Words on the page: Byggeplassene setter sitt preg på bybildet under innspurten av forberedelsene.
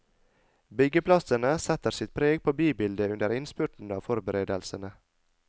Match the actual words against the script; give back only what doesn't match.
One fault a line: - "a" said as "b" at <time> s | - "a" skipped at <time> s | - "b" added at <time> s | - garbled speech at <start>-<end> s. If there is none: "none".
none